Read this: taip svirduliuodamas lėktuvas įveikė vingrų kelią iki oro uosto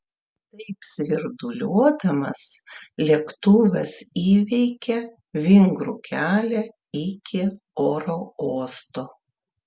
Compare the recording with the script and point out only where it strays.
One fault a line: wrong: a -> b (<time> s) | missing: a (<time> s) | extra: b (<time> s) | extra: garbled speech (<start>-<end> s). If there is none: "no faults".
no faults